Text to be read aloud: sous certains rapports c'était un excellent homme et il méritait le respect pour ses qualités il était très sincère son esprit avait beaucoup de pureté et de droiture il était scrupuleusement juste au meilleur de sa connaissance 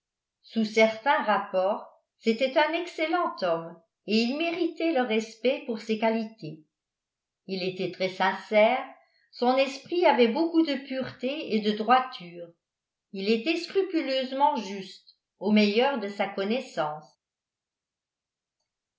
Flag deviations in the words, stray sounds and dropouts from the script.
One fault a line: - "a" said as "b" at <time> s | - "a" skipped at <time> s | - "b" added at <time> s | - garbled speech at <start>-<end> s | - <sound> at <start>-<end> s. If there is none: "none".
none